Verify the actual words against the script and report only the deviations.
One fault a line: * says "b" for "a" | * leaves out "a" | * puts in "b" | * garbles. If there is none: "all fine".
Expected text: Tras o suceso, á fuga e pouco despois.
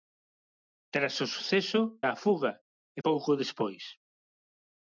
all fine